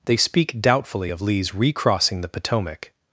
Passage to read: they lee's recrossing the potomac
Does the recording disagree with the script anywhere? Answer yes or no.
yes